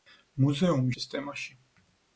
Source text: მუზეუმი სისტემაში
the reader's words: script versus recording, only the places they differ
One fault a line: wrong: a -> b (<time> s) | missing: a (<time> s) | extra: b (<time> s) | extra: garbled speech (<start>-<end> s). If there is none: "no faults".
no faults